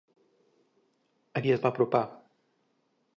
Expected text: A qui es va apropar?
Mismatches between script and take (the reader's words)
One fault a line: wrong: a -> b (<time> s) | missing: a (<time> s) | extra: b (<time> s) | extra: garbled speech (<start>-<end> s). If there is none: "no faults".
no faults